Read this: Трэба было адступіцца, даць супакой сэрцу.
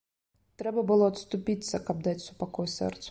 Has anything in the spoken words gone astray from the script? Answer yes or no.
yes